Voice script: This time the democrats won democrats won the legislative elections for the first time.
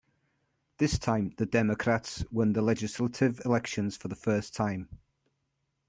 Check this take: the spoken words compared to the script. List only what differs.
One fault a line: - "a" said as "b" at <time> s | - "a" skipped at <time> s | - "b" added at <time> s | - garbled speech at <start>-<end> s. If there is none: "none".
- "democrats won" skipped at 2.5 s